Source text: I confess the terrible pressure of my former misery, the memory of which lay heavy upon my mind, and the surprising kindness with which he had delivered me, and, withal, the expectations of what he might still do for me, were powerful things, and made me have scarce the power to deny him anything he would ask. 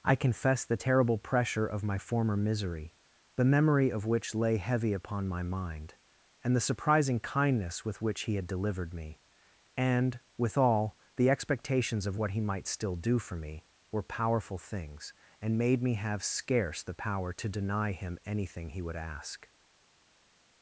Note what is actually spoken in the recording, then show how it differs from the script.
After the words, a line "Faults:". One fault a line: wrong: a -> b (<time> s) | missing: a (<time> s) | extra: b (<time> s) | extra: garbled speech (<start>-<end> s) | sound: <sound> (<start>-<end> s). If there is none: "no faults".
I confess the terrible pressure of my former misery, the memory of which lay heavy upon my mind, and the surprising kindness with which he had delivered me, and, withal, the expectations of what he might still do for me, were powerful things, and made me have scarce the power to deny him anything he would ask.
Faults:
no faults